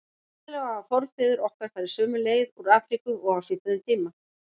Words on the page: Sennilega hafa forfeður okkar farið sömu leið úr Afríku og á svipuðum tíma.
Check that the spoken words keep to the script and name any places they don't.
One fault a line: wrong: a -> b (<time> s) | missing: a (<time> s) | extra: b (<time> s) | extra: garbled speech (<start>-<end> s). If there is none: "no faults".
no faults